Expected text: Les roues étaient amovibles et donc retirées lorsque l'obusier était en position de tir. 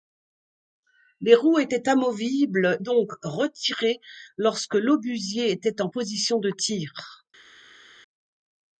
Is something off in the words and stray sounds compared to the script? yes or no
yes